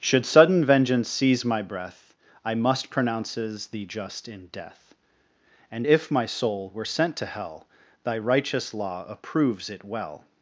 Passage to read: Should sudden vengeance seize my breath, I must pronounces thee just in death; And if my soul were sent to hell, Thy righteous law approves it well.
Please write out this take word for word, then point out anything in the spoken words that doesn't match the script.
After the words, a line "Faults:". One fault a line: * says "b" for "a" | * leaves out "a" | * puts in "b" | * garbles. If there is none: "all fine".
Should sudden vengeance seize my breath, I must pronounces thee just in death; And if my soul were sent to hell, Thy righteous law approves it well.
Faults:
all fine